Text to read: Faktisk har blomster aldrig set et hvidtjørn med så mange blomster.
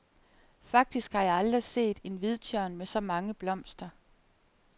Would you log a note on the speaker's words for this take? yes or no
yes